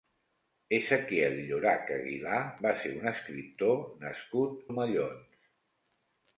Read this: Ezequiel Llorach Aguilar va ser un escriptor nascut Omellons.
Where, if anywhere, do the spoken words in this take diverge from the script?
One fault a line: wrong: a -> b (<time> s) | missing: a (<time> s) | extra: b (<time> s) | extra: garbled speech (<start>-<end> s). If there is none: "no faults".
no faults